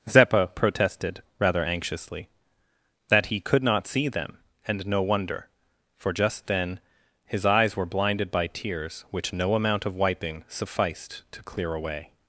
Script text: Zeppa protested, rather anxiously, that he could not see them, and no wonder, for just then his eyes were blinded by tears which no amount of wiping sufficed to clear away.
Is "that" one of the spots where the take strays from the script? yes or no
no